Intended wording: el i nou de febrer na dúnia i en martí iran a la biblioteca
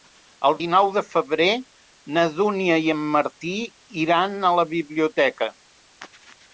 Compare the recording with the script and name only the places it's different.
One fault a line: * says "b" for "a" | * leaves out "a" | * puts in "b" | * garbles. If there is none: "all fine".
all fine